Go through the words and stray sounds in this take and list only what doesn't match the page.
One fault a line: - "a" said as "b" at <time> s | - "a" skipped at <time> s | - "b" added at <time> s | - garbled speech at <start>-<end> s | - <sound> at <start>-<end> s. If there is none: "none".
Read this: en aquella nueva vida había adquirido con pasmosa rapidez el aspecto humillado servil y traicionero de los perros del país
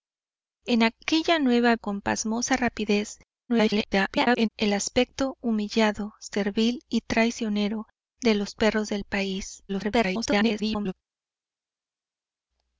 - "vida había adquirido" skipped at 1.8 s
- garbled speech at 3.5-4.5 s
- garbled speech at 9.7-10.9 s